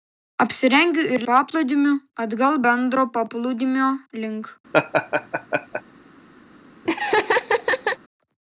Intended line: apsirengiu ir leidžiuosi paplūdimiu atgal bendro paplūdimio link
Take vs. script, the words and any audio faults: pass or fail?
fail